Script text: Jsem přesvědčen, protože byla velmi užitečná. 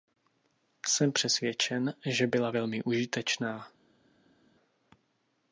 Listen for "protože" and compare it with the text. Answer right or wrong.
wrong